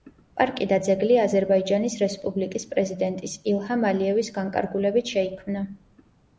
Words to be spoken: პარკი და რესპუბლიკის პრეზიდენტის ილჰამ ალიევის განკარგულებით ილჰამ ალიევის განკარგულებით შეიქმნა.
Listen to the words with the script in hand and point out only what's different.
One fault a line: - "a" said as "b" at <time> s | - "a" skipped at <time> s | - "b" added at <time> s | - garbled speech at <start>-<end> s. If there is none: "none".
- "ძეგლი აზერბაიჯანის" added at 0.9 s
- "ილჰამ ალიევის განკარგულებით" skipped at 5.2 s